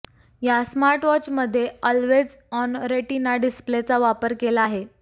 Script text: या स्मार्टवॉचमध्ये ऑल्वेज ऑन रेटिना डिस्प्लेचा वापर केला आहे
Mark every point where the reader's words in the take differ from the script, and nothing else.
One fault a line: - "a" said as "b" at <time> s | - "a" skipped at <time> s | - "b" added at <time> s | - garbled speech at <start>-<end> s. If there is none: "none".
none